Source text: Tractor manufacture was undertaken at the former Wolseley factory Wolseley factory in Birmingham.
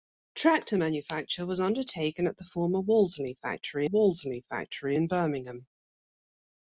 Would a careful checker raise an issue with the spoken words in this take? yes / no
no